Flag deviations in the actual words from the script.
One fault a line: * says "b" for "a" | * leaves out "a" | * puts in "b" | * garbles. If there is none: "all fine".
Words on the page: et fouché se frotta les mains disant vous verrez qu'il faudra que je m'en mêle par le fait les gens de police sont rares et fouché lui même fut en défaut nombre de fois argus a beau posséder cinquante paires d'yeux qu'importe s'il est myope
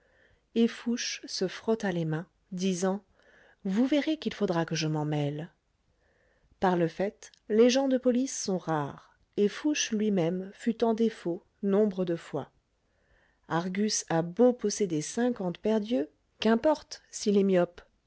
all fine